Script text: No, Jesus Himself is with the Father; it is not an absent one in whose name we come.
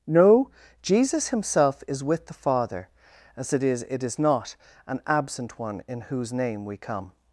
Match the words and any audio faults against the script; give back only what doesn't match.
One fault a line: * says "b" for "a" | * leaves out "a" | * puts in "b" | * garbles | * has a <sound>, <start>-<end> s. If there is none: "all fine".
* puts in "as it is"